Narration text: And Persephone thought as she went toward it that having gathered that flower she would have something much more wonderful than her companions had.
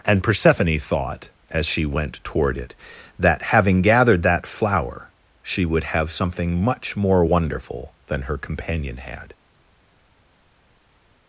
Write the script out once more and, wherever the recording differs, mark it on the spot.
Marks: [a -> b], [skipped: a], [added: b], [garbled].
And Persephone thought as she went toward it that having gathered that flower she would have something much more wonderful than her [companions -> companion] had.